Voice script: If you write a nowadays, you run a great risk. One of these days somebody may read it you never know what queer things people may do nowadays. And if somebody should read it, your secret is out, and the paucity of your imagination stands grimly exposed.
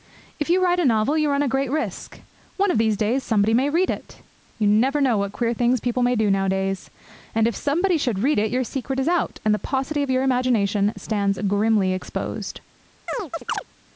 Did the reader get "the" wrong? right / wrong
right